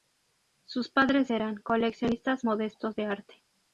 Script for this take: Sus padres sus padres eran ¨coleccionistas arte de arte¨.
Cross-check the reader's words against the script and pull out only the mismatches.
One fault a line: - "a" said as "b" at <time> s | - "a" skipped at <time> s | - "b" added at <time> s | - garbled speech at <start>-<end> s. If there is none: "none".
- "sus padres" skipped at 1.3 s
- "arte" said as "modestos" at 2.4 s